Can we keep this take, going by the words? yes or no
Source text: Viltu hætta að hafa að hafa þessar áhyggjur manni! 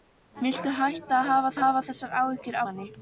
yes